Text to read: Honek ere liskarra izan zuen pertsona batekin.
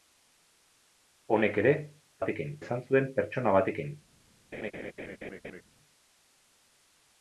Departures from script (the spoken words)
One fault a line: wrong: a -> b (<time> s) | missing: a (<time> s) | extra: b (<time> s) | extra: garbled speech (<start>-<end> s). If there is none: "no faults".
wrong: liskarra -> batekin (2.2 s)